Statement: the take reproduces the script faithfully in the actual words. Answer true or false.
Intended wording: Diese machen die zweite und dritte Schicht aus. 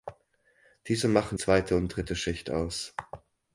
false